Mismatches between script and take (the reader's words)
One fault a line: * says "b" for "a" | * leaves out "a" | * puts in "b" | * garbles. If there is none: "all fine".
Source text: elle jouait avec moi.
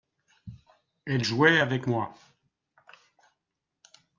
all fine